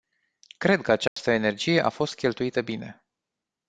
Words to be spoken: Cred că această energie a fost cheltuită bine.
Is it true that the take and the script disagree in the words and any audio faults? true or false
true